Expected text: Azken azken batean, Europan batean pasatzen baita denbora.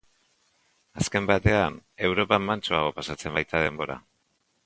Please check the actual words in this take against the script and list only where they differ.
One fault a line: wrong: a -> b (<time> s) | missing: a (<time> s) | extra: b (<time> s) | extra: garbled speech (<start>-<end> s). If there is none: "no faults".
missing: azken (1.3 s)
wrong: batean -> mantsoago (2.5 s)